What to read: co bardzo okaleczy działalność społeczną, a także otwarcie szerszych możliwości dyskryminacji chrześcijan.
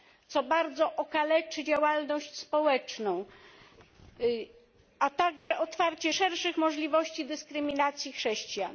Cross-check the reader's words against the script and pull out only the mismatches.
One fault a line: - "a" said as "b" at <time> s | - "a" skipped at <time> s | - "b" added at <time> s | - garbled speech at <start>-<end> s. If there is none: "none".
none